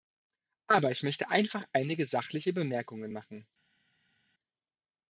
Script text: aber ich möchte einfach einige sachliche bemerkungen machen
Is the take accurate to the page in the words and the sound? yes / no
yes